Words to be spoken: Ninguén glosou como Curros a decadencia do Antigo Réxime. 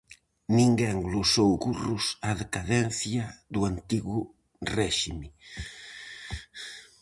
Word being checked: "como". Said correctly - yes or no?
no